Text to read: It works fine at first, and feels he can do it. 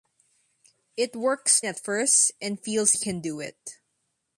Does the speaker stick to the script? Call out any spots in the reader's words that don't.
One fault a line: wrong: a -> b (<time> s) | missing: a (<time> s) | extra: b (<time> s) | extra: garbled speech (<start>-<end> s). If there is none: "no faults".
missing: fine (1.6 s)
missing: he (2.9 s)